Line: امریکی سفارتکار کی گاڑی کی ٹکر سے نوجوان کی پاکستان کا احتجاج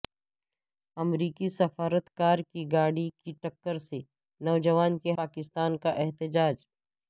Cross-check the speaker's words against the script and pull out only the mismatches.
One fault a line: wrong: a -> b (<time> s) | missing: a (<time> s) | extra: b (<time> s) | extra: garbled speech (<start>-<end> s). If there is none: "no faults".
no faults